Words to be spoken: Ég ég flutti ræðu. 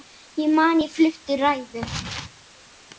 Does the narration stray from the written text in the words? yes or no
yes